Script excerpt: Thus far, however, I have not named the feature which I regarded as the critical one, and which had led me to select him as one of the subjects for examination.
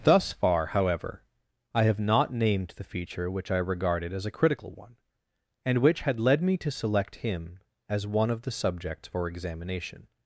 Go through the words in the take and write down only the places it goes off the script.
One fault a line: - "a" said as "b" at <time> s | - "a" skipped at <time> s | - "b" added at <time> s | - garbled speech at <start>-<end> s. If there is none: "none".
- "the" said as "a" at 4.2 s